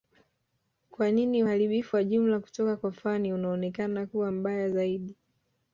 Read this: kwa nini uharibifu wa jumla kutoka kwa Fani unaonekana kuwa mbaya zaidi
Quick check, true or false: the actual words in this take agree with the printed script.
true